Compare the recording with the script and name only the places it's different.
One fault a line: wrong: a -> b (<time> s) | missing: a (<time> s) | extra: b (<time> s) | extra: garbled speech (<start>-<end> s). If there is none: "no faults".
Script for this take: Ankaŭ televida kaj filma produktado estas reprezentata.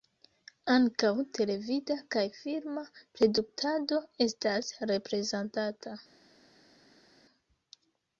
no faults